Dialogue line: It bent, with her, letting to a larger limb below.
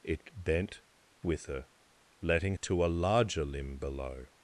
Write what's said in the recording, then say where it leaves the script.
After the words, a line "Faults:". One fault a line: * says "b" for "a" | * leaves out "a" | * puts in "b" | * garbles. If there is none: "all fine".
It bent, with her, letting to a larger limb below.
Faults:
all fine